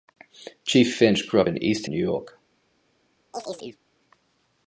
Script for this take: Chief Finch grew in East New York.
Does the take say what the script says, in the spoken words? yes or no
yes